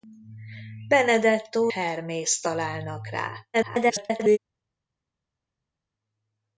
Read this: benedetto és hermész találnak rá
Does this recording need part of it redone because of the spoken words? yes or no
yes